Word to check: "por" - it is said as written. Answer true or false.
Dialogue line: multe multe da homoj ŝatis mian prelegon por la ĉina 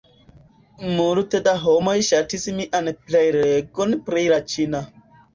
false